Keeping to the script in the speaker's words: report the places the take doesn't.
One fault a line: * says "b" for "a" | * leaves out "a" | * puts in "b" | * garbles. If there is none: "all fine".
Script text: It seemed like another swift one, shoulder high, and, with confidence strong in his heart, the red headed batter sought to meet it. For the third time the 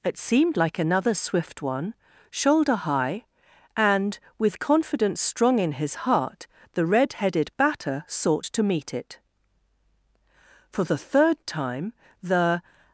all fine